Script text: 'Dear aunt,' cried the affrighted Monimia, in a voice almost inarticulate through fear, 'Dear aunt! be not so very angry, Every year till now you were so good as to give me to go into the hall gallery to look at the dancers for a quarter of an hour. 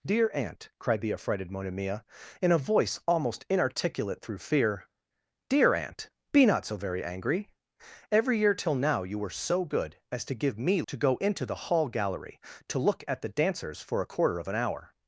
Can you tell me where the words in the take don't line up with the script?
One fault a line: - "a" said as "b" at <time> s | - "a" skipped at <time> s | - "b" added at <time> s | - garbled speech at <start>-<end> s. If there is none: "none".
none